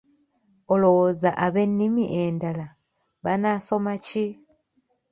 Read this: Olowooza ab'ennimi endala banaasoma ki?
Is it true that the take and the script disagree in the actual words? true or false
false